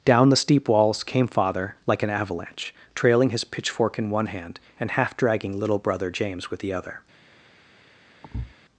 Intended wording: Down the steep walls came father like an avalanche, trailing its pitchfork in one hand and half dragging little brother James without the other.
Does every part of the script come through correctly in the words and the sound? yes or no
no